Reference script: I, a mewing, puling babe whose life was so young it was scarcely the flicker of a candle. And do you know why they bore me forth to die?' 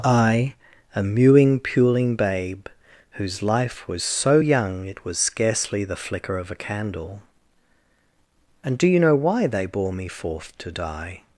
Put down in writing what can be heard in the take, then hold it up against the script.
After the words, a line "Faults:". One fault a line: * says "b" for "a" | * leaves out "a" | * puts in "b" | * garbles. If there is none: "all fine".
I, a mewing, puling babe whose life was so young it was scarcely the flicker of a candle. And do you know why they bore me forth to die?'
Faults:
all fine